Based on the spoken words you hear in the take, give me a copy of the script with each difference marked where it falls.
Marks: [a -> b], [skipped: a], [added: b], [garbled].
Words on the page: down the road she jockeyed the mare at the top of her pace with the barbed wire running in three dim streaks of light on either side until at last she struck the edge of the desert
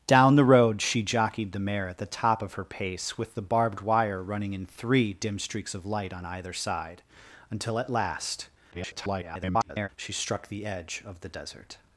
down the road she jockeyed the mare at the top of her pace with the barbed wire running in three dim streaks of light on either side until at last [garbled] she struck the edge of the desert